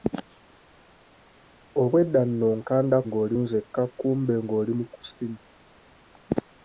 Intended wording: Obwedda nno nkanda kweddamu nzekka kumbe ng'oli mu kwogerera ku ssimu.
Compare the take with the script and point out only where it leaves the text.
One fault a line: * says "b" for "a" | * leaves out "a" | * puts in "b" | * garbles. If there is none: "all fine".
* says "ng'oli" for "kweddamu"
* leaves out "kwogerera"